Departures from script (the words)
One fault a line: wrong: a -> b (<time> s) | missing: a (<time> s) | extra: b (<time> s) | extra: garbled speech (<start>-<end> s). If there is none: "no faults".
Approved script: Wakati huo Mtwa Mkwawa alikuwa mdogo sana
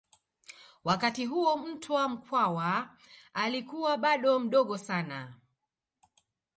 extra: bado (4.0 s)